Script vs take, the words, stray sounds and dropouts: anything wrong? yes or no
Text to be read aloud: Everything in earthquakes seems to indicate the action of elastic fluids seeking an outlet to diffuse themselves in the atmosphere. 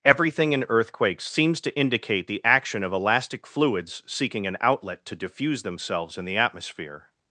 no